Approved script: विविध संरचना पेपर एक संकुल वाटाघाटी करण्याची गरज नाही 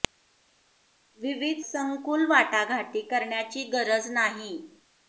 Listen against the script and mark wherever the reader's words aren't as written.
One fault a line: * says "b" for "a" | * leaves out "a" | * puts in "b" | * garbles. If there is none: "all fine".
* leaves out "संरचना पेपर एक"